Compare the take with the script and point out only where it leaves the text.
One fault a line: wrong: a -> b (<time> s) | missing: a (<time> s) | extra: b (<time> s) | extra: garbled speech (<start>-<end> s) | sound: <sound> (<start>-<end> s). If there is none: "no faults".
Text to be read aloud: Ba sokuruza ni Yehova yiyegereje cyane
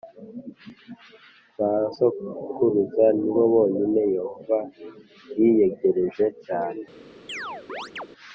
extra: bo bonyine (3.3 s)
sound: chirp (7.3-8.1 s)